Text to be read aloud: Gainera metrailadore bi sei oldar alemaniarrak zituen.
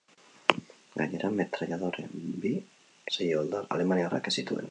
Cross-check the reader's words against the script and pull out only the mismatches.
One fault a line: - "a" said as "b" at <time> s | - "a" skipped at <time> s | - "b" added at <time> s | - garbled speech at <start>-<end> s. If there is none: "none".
none